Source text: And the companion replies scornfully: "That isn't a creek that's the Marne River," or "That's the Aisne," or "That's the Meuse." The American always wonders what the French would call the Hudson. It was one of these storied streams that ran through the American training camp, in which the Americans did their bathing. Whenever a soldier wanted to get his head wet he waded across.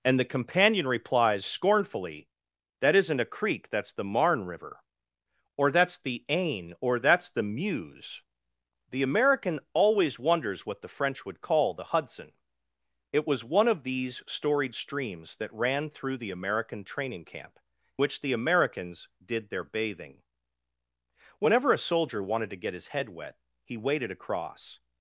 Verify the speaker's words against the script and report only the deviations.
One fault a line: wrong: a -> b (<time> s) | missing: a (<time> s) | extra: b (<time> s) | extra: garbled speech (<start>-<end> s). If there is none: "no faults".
missing: in (17.6 s)